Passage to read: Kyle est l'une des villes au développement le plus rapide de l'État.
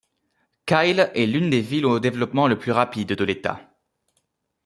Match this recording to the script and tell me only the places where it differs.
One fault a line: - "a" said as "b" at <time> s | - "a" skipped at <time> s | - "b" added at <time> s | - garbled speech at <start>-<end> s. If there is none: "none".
none